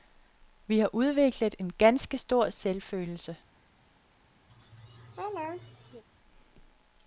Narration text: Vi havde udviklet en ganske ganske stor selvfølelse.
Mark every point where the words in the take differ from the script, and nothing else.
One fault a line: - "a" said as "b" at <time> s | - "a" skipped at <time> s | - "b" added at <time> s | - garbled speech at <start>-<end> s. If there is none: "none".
- "havde" said as "har" at 0.8 s
- "ganske" skipped at 2.2 s